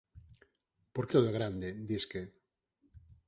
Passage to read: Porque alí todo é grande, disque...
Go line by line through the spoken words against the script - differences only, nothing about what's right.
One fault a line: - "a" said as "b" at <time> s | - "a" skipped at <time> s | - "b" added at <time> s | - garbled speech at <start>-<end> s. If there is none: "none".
- "alí" skipped at 1.1 s